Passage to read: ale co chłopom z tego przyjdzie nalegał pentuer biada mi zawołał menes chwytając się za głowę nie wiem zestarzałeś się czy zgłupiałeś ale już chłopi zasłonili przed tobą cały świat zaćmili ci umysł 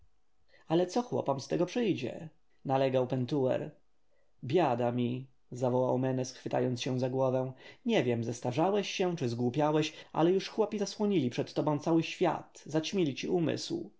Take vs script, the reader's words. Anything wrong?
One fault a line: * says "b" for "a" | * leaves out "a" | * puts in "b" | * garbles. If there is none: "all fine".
all fine